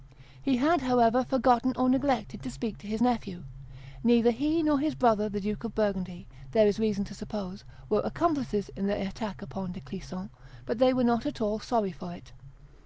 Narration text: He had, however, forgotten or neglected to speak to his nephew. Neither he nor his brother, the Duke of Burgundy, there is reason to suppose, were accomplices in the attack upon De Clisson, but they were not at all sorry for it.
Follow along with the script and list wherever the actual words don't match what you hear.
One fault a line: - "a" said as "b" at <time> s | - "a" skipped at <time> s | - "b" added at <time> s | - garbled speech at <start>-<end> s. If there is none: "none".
none